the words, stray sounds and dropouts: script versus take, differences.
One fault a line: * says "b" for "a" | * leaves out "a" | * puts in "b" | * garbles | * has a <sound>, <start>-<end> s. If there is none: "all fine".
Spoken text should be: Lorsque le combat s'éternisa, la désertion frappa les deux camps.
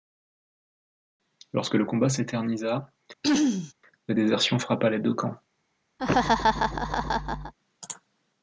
* has a throat clearing, 3.2-3.7 s
* has a laugh, 6.0-7.5 s